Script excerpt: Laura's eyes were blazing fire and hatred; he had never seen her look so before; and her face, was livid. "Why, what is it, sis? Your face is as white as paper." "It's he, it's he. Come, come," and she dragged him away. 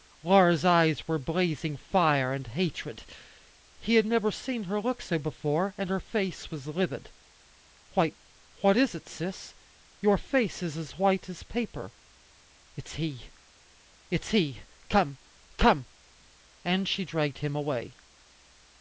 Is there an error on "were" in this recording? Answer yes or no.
no